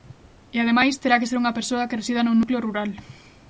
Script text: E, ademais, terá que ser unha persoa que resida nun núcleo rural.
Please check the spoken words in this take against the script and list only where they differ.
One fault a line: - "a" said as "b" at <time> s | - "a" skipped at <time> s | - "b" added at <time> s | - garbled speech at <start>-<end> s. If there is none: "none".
none